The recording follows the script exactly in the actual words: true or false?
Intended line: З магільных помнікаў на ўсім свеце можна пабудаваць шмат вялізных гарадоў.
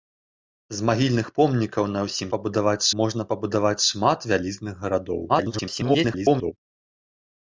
false